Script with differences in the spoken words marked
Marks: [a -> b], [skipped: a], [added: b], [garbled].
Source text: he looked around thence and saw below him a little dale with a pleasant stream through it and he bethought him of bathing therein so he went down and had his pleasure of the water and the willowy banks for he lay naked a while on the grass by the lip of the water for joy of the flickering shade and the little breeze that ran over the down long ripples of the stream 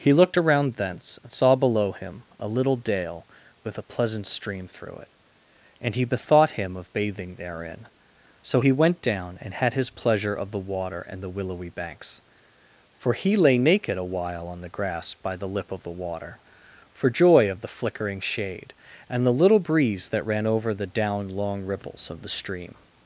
he looked around thence and saw below him a little dale with a pleasant stream through it and he bethought him of bathing therein so he went down and had his pleasure of the water and the willowy banks for he lay naked a while on the grass by the lip of the water for joy of the flickering shade and the little breeze that ran over the down long ripples of the stream